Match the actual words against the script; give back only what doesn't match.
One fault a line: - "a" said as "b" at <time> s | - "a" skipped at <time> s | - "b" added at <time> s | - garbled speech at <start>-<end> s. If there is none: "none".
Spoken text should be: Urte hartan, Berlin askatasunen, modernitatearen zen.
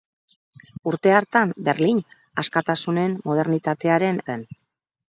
none